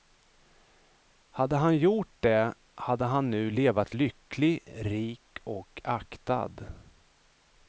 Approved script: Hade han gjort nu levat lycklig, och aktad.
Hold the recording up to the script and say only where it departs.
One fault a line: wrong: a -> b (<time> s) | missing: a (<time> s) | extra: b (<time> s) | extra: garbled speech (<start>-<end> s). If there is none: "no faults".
extra: det hade han (2.2 s)
extra: rik (4.7 s)